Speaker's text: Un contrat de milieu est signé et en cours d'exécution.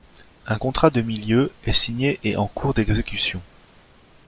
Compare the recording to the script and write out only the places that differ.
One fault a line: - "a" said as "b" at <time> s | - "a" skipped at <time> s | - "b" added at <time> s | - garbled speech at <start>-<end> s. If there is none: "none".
none